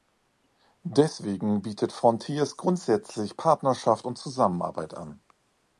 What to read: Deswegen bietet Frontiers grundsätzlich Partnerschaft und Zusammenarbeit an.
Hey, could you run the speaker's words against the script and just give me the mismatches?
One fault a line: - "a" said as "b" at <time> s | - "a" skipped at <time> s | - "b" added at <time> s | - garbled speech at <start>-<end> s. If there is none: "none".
none